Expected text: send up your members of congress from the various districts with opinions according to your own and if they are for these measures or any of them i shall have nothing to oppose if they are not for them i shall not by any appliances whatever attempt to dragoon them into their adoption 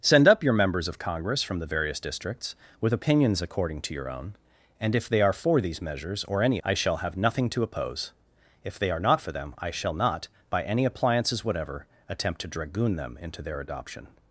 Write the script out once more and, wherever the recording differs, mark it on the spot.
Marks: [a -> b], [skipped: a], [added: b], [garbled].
send up your members of congress from the various districts with opinions according to your own and if they are for these measures or any [skipped: of them] i shall have nothing to oppose if they are not for them i shall not by any appliances whatever attempt to dragoon them into their adoption